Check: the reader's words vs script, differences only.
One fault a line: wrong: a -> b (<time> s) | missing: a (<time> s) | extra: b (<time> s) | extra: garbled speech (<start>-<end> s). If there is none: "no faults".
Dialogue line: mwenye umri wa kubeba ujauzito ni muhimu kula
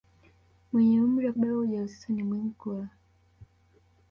no faults